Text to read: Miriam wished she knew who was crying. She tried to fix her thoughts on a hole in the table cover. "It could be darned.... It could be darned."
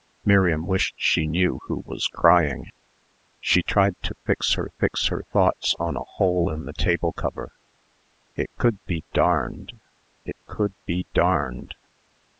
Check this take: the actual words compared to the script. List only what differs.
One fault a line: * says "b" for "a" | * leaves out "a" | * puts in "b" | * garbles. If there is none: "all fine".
* puts in "fix her"